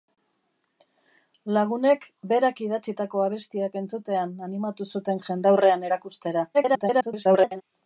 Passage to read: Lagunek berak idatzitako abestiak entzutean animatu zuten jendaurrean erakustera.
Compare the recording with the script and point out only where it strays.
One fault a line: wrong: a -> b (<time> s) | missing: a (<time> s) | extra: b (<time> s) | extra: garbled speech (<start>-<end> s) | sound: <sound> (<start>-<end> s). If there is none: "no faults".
extra: garbled speech (6.5-7.6 s)